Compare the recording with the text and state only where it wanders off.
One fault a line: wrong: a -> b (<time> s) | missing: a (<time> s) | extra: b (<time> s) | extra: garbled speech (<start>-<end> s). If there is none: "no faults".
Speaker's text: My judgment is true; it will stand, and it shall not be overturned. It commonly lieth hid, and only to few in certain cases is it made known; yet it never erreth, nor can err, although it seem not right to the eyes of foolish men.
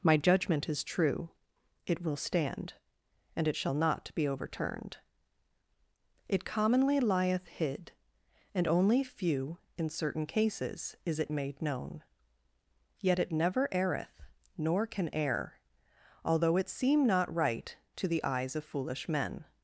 missing: to (9.0 s)